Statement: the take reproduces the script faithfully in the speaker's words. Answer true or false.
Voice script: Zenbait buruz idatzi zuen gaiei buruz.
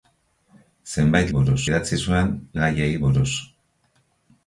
true